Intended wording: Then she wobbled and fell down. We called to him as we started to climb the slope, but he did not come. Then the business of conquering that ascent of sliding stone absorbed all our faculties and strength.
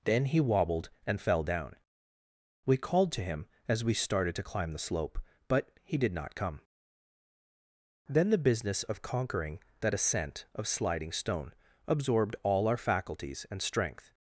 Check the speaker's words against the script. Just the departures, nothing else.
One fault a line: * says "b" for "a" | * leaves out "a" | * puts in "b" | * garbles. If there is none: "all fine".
* says "he" for "she"